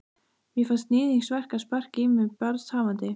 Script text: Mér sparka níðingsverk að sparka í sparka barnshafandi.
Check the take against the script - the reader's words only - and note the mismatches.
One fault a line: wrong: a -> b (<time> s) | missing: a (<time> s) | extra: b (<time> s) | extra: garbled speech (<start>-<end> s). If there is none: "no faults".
wrong: sparka -> fannst (0.7 s)
wrong: sparka -> mig (2.1 s)